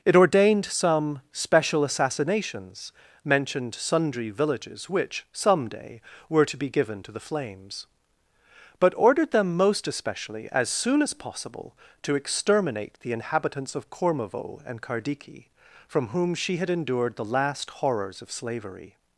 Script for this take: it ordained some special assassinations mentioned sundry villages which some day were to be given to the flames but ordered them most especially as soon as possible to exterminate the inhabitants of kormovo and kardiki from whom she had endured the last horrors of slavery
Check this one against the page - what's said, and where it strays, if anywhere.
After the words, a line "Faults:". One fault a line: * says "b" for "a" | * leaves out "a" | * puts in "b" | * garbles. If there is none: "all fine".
it ordained some special assassinations mentioned sundry villages which some day were to be given to the flames but ordered them most especially as soon as possible to exterminate the inhabitants of kormovo and kardiki from whom she had endured the last horrors of slavery
Faults:
all fine